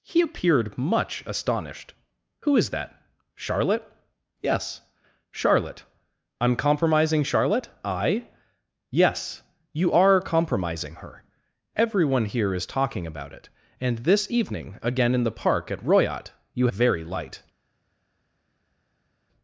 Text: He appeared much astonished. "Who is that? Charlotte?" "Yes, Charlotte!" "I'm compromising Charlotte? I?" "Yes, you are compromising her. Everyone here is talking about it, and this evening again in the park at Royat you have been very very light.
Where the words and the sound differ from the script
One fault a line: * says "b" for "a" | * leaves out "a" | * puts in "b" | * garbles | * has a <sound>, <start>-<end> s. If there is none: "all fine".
* leaves out "have been very"